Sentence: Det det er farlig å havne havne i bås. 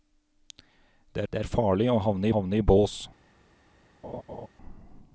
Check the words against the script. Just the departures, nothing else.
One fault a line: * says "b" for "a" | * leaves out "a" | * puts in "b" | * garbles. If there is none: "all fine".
all fine